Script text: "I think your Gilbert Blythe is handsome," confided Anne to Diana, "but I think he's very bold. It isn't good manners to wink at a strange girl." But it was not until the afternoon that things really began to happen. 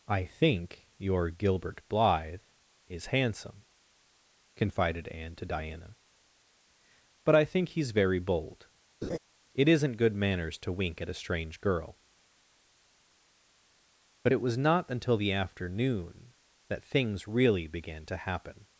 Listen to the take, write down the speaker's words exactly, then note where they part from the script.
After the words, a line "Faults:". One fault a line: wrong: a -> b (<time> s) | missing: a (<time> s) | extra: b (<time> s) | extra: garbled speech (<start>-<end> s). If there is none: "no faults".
"I think your Gilbert Blythe is handsome," confided Anne to Diana, "but I think he's very bold. It isn't good manners to wink at a strange girl." But it was not until the afternoon that things really began to happen.
Faults:
no faults